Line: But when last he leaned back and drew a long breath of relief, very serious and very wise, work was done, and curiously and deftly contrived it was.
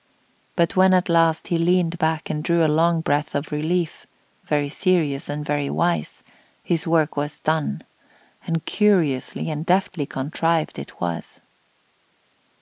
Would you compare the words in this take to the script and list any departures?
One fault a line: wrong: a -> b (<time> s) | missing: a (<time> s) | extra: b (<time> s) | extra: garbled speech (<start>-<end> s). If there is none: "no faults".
extra: at (0.9 s)
extra: his (6.6 s)